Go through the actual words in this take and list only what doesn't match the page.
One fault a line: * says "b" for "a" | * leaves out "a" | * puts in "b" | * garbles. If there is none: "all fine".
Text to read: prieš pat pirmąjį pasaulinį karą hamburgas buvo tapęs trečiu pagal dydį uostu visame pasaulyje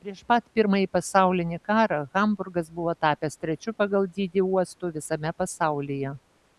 all fine